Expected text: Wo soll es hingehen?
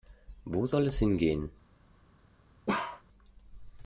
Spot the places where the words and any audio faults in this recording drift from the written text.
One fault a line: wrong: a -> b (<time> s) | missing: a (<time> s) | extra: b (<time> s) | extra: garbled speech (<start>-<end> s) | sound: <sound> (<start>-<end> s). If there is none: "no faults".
sound: bark (2.7-3.0 s)